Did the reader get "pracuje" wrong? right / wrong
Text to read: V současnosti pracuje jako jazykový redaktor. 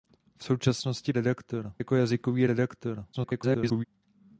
wrong